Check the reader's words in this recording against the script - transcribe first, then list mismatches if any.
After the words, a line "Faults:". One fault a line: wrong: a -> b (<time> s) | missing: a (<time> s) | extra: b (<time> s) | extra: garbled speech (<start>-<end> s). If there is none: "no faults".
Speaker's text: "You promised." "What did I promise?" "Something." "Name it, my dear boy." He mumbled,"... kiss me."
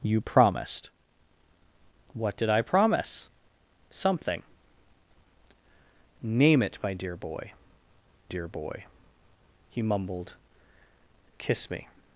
"You promised." "What did I promise?" "Something." "Name it, my dear boy dear boy." He mumbled,"... kiss me."
Faults:
extra: dear boy (8.3 s)